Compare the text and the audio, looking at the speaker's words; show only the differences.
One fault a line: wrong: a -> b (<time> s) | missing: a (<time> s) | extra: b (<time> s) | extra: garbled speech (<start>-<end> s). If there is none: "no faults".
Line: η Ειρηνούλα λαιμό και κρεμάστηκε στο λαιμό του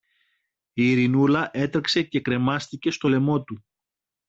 wrong: λαιμό -> έτρεξε (1.5 s)